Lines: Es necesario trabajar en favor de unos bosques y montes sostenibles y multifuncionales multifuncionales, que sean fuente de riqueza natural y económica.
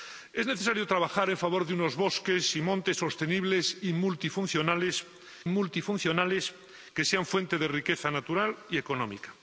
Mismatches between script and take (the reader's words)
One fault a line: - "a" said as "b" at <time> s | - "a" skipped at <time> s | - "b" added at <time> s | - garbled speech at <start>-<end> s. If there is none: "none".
none